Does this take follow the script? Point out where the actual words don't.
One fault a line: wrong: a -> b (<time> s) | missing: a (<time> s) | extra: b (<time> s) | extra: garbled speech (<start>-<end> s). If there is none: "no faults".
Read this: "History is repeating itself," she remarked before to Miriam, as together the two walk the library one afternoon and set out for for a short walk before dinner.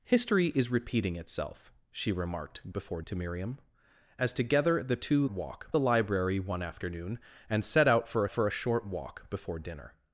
no faults